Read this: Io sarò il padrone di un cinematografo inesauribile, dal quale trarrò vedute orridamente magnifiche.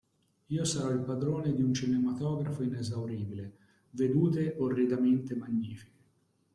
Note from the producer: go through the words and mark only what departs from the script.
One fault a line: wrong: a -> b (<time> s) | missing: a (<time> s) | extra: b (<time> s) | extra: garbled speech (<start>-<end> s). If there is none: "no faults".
missing: dal quale trarrò (3.6 s)